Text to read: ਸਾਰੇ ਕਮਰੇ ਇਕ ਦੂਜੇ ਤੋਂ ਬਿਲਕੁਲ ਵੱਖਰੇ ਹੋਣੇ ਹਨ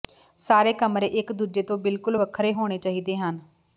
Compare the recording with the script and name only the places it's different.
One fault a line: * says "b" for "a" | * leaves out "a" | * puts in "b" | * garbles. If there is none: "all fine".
* puts in "ਚਾਹੀਦੇ"